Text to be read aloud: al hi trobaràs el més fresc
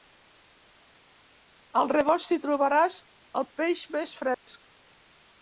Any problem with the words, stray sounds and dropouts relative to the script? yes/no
yes